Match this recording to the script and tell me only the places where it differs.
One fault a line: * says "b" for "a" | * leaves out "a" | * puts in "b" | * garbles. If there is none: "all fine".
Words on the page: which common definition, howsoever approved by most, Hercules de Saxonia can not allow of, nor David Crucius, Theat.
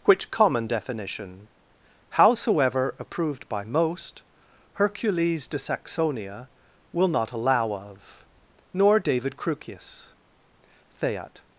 * says "will" for "can"